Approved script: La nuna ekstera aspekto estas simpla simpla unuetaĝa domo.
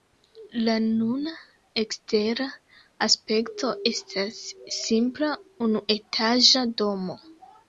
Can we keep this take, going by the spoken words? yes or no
no